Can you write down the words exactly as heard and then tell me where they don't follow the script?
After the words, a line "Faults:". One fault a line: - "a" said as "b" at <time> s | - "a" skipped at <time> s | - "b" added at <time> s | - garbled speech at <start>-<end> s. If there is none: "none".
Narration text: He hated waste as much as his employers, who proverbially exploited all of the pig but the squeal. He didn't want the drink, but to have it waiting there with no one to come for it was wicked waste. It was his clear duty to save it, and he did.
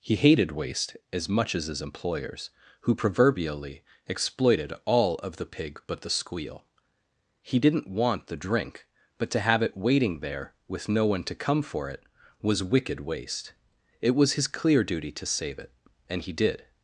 He hated waste as much as his employers, who proverbially exploited all of the pig but the squeal. He didn't want the drink, but to have it waiting there with no one to come for it was wicked waste. It was his clear duty to save it, and he did.
Faults:
none